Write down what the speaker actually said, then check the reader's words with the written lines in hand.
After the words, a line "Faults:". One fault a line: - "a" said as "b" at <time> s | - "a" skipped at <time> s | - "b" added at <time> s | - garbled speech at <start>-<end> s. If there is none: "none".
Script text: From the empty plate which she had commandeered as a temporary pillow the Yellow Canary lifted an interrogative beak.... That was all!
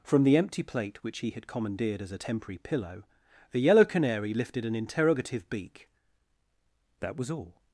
From the empty plate which he had commandeered as a temporary pillow the Yellow Canary lifted an interrogative beak.... That was all!
Faults:
- "she" said as "he" at 1.2 s